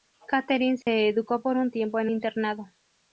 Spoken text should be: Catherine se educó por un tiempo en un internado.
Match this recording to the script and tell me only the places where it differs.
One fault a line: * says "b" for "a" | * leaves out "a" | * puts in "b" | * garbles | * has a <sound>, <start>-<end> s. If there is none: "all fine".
* has a dropout, 0.8-0.9 s
* leaves out "un"